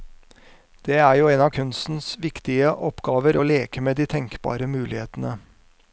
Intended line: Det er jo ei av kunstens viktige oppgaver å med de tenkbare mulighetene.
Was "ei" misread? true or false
true